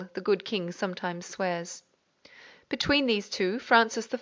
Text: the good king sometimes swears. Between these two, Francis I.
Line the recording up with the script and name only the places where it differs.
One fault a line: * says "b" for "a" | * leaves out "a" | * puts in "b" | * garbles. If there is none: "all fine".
all fine